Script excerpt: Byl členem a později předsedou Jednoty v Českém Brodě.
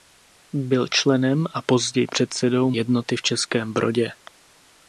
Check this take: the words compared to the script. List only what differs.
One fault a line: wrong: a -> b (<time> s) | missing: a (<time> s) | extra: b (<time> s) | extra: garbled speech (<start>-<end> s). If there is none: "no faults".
no faults